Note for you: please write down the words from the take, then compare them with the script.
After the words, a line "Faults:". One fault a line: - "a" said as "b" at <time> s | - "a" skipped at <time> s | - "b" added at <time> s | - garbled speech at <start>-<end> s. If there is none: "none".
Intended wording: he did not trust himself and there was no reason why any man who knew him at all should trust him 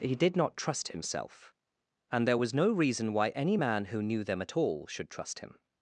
he did not trust himself and there was no reason why any man who knew them at all should trust him
Faults:
- "him" said as "them" at 4.2 s